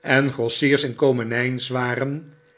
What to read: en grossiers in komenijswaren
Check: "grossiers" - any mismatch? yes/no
no